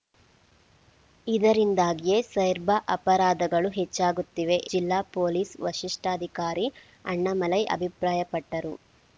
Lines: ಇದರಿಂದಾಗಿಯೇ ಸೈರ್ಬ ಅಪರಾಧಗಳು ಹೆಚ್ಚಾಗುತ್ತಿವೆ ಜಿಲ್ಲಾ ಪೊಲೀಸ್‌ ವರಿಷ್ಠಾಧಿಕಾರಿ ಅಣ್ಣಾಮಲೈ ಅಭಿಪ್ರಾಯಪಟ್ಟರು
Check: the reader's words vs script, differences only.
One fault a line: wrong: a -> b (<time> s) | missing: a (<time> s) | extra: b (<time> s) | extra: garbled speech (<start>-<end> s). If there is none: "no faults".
no faults